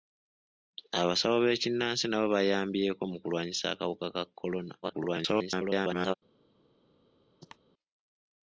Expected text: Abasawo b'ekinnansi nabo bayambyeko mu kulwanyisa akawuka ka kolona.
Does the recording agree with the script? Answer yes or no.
no